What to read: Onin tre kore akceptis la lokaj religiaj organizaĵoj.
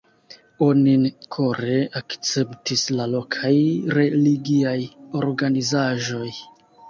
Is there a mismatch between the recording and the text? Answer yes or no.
yes